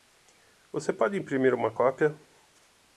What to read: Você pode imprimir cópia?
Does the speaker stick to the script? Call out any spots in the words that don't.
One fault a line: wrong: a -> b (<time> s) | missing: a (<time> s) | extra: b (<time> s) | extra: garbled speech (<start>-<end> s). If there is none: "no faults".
extra: uma (1.5 s)